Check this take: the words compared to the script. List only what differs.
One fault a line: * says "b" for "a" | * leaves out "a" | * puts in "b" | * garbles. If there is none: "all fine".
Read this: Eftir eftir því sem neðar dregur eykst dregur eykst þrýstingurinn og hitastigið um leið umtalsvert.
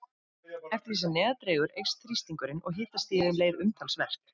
* leaves out "eftir"
* leaves out "dregur eykst"